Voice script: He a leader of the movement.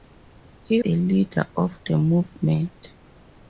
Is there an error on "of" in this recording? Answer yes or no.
no